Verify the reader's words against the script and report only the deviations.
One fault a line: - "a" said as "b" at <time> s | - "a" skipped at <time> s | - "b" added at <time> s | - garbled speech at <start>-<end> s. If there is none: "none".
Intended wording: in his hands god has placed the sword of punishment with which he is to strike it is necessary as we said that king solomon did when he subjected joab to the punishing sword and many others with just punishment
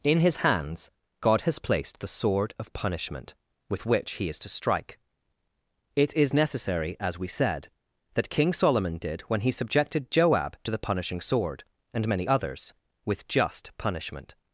none